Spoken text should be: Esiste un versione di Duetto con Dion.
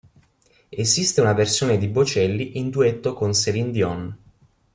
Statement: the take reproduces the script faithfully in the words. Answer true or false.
false